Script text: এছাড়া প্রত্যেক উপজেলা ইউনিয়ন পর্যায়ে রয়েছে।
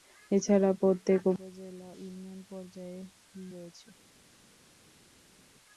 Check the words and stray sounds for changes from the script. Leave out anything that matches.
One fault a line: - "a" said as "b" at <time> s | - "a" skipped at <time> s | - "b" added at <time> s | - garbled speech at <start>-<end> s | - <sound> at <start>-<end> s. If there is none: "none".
none